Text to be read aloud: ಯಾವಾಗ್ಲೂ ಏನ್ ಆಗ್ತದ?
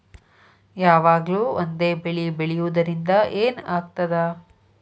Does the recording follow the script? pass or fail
fail